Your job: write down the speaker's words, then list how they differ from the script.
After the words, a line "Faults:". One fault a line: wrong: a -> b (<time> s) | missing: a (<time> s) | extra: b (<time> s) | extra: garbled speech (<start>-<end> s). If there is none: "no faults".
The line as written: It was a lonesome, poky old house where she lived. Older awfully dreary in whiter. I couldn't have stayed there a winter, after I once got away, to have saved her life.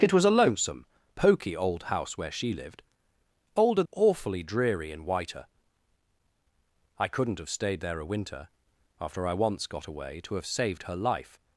It was a lonesome, poky old house where she lived. Older awfully dreary in whiter. I couldn't have stayed there a winter, after I once got away, to have saved her life.
Faults:
no faults